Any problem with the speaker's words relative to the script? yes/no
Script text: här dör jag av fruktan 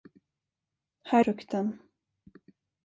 yes